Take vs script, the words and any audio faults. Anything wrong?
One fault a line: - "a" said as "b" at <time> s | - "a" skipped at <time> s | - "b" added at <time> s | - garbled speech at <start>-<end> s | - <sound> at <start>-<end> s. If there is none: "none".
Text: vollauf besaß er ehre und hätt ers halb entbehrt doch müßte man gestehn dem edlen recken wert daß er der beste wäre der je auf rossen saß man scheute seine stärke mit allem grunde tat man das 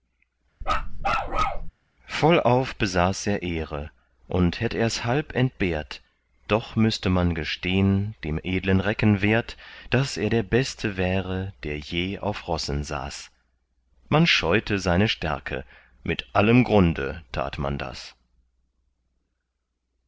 - bark at 0.6-1.7 s